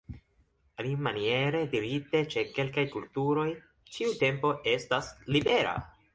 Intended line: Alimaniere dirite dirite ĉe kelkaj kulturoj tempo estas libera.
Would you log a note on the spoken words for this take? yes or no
yes